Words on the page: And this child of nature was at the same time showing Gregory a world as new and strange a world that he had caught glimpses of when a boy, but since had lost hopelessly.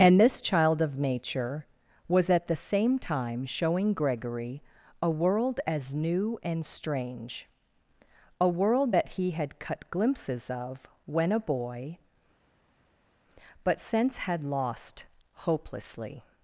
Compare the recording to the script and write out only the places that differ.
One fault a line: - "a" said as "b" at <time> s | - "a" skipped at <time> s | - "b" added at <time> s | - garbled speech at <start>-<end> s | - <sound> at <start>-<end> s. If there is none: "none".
- "caught" said as "cut" at 9.6 s